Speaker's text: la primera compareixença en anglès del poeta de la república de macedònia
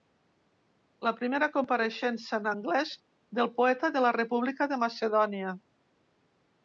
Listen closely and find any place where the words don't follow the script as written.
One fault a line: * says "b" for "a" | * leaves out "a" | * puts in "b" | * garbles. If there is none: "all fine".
all fine